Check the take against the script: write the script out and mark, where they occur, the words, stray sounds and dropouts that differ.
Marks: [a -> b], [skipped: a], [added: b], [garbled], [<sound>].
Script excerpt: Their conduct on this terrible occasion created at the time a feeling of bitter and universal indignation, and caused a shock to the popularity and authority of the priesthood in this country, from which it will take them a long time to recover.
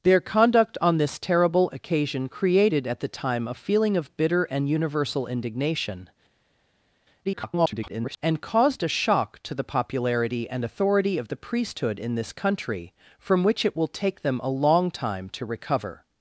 Their conduct on this terrible occasion created at the time a feeling of bitter and universal indignation, [garbled] and caused a shock to the popularity and authority of the priesthood in this country, from which it will take them a long time to recover.